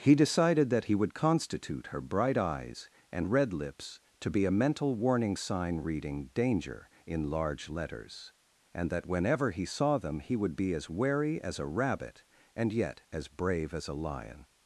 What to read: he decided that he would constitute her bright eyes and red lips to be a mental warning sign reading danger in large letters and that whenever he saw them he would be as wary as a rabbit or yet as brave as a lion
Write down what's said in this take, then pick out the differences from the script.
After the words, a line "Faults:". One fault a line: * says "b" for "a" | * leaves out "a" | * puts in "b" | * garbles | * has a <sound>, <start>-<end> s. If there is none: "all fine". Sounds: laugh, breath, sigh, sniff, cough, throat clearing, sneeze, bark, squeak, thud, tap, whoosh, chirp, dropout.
he decided that he would constitute her bright eyes and red lips to be a mental warning sign reading danger in large letters and that whenever he saw them he would be as wary as a rabbit and yet as brave as a lion
Faults:
* says "and" for "or"